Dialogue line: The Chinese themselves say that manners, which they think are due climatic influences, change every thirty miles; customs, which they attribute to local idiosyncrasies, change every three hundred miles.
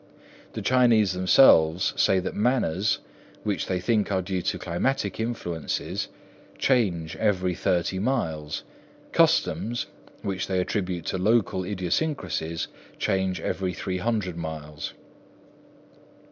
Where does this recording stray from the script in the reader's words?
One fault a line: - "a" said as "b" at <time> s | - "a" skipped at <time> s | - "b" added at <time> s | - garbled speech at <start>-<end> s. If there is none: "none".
- "to" added at 4.4 s